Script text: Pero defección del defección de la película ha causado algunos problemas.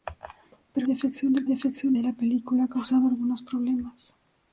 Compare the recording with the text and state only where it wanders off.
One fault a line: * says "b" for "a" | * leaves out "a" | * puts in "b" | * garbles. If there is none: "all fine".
all fine